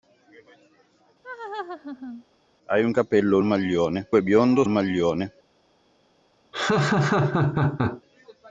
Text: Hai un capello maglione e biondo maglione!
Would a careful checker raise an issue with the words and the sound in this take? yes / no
yes